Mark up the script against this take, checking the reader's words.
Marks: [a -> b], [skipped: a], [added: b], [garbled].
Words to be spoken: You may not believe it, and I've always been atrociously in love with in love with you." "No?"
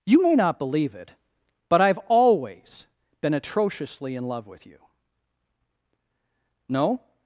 You may not believe it, [and -> but] I've always been atrociously in love with [skipped: in love with] you." "No?"